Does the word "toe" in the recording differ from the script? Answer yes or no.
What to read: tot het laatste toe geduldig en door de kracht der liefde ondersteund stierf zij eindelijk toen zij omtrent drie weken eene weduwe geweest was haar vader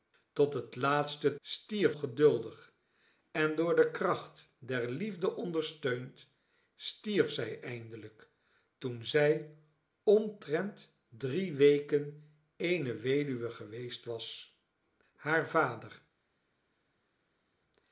yes